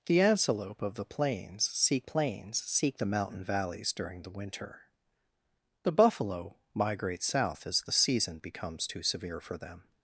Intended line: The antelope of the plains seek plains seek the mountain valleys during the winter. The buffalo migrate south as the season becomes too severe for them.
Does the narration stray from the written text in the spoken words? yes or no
no